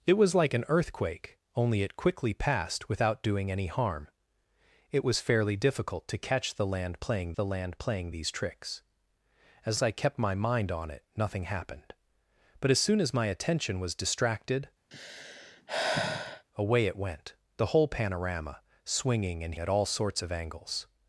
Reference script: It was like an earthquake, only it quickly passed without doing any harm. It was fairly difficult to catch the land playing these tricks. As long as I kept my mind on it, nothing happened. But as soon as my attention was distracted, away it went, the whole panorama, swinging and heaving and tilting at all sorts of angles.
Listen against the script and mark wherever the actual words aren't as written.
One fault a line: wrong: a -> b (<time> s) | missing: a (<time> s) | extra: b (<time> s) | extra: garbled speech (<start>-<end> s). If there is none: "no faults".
extra: the land playing (7.3 s)
missing: long (9.8 s)
missing: heaving and tilting (19.6 s)